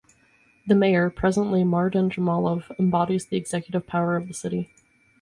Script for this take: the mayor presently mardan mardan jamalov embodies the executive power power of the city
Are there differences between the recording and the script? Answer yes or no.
yes